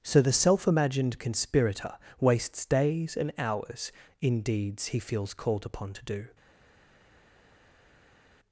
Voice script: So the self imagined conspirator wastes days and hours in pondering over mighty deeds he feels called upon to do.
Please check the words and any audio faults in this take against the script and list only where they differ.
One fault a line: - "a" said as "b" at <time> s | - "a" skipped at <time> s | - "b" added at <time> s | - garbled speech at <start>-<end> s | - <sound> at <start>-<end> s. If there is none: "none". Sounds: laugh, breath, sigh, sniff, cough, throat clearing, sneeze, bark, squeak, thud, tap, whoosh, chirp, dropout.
- "pondering over mighty" skipped at 4.4 s